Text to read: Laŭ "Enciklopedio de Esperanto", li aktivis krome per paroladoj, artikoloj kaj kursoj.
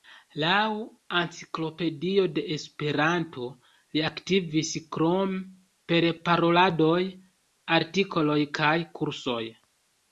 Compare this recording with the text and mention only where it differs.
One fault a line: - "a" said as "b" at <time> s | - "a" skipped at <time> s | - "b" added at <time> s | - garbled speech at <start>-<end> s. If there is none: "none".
none